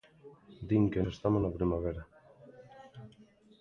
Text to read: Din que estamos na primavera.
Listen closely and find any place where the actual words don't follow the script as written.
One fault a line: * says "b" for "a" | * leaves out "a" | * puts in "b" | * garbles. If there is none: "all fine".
all fine